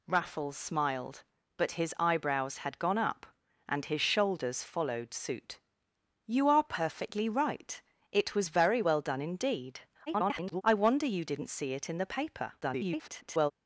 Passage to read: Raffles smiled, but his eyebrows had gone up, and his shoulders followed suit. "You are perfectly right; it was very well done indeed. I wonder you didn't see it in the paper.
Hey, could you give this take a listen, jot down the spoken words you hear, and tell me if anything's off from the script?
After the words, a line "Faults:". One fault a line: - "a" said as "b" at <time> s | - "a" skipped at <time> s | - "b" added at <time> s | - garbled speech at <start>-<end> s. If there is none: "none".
Raffles smiled, but his eyebrows had gone up, and his shoulders followed suit. "You are perfectly right; it was very well done indeed. [garbled] I wonder you didn't see it in the paper. [garbled]
Faults:
- garbled speech at 10.1-10.6 s
- garbled speech at 12.6-13.5 s